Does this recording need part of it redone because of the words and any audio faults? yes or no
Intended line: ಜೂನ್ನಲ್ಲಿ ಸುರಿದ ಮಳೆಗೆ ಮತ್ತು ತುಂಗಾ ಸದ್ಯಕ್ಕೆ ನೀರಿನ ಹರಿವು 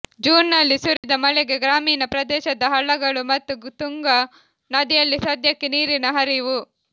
yes